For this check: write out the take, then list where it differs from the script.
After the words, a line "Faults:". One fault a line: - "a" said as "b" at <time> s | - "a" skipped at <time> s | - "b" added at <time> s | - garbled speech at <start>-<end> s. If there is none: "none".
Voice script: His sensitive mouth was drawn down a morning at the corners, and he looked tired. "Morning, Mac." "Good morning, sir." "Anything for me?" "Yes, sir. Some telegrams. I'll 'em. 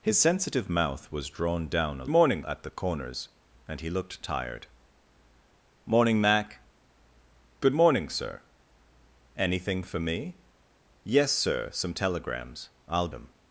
His sensitive mouth was drawn down a morning at the corners, and he looked tired. "Morning, Mac." "Good morning, sir." "Anything for me?" "Yes, sir. Some telegrams. I'll 'em.
Faults:
none